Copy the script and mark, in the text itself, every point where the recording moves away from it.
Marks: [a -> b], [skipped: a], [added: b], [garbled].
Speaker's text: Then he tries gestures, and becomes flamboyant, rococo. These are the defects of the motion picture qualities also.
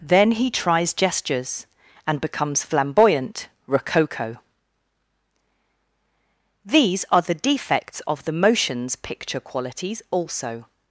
Then he tries gestures, and becomes flamboyant, rococo. These are the defects of the [motion -> motions] picture qualities also.